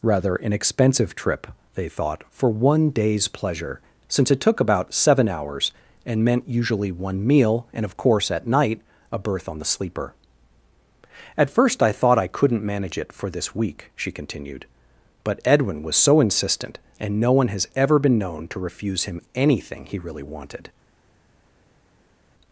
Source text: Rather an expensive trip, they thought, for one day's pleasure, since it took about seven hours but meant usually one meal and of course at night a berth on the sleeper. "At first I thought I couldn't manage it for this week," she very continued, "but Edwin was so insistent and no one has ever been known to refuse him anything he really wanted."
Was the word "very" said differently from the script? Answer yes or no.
yes